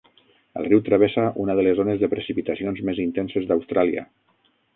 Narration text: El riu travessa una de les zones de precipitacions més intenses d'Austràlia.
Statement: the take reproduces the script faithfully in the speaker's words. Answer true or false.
true